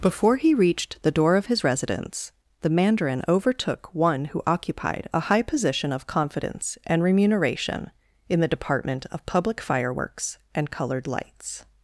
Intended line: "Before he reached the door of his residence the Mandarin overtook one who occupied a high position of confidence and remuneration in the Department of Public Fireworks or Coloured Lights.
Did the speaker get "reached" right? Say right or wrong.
right